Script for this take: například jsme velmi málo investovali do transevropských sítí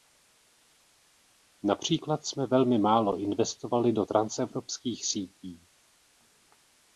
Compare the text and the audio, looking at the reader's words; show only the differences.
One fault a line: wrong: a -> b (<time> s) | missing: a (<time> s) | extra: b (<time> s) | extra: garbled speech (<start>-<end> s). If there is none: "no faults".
no faults